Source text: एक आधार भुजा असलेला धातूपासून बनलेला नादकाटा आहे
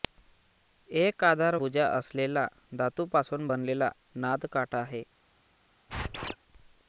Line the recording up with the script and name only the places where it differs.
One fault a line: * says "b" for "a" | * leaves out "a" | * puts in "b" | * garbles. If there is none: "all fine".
all fine